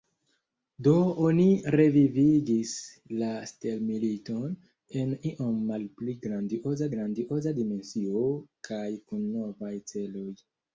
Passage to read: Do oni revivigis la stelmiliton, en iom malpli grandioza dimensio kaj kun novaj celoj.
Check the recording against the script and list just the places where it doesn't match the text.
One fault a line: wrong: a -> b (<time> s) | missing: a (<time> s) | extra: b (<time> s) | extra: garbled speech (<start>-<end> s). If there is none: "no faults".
extra: grandioza (6.9 s)